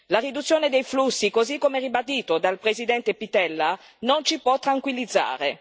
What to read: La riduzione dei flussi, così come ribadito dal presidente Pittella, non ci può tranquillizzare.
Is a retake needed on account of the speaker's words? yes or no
no